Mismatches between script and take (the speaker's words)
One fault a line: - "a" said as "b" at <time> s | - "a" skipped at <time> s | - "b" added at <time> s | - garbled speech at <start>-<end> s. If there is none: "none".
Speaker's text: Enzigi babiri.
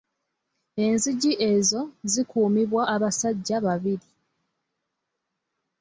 - "ezo zikuumibwa abasajja" added at 1.5 s